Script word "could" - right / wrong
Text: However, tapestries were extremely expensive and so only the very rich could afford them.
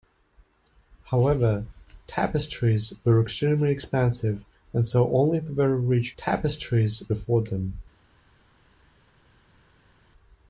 wrong